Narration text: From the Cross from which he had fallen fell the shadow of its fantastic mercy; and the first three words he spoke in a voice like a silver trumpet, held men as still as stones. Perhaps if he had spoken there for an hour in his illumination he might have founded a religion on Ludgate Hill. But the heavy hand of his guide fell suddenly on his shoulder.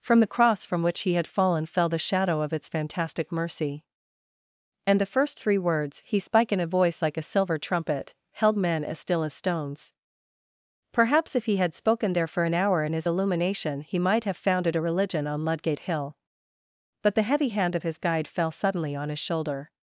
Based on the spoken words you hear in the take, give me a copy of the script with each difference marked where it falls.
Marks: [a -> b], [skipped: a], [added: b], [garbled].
From the Cross from which he had fallen fell the shadow of its fantastic mercy; and the first three words he [spoke -> spike] in a voice like a silver trumpet, held men as still as stones. Perhaps if he had spoken there for an hour in his illumination he might have founded a religion on Ludgate Hill. But the heavy hand of his guide fell suddenly on his shoulder.